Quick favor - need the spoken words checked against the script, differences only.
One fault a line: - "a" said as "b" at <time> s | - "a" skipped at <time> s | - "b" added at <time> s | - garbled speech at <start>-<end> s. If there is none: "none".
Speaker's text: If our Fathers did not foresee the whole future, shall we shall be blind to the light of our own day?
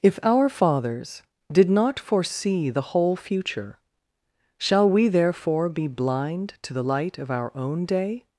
- "shall" said as "therefore" at 5.1 s